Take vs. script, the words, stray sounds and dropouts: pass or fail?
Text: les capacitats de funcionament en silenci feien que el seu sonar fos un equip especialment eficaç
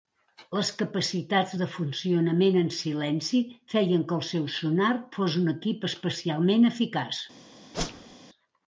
fail